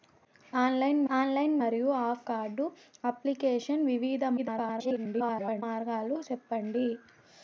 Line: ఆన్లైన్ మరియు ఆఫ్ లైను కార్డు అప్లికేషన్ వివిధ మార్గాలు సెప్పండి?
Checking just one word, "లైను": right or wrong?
wrong